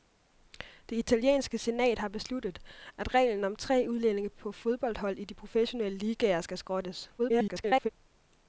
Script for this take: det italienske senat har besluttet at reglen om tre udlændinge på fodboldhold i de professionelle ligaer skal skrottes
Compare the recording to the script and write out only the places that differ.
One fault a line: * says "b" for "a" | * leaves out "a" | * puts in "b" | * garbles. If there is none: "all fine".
* garbles